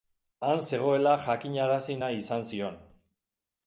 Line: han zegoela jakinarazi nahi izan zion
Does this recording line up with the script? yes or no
yes